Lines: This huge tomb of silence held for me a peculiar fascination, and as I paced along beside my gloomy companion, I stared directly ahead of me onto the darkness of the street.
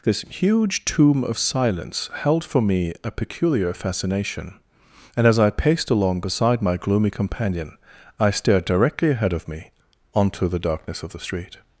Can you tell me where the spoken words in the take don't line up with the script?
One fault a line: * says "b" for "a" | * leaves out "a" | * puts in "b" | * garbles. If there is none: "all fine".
all fine